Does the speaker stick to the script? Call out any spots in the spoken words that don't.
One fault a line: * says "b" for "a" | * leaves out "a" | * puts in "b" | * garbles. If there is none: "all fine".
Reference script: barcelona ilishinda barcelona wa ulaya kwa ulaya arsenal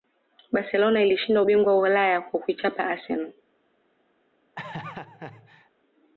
* says "ubingwa" for "barcelona"
* says "kuichapa" for "ulaya"